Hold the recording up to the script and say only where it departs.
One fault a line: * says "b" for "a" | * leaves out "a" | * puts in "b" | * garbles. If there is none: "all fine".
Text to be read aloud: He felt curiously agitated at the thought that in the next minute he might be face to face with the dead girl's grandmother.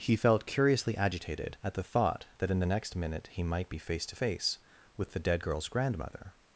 all fine